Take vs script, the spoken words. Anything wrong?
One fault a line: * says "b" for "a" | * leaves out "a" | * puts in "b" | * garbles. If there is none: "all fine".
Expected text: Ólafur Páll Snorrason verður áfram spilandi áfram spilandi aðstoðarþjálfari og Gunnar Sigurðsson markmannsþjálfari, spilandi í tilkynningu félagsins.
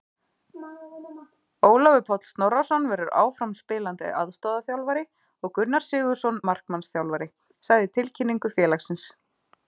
* leaves out "áfram spilandi"
* says "sagði" for "spilandi"